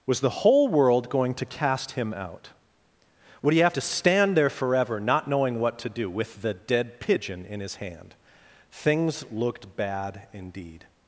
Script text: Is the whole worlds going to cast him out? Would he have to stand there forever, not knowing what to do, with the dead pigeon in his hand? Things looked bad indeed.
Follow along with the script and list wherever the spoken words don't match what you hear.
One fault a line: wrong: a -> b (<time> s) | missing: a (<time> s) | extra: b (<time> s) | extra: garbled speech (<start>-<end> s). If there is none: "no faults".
wrong: Is -> Was (0.1 s)
wrong: worlds -> world (0.7 s)